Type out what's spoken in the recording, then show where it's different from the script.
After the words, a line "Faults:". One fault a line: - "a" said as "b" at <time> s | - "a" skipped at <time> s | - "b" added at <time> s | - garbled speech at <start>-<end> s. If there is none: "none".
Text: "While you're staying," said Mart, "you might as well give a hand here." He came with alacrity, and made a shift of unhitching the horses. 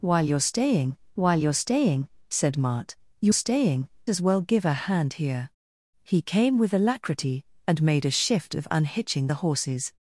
"While you're staying while you're staying," said Mart, "you staying as well give a hand here." He came with alacrity, and made a shift of unhitching the horses.
Faults:
- "while you're staying" added at 1.2 s
- "might" said as "staying" at 3.3 s